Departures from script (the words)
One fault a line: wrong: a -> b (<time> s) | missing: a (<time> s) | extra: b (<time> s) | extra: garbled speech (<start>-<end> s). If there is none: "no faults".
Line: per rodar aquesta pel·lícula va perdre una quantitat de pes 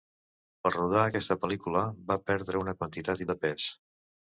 no faults